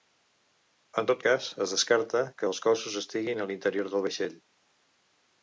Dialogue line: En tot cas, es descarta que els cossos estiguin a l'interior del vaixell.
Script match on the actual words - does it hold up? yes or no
yes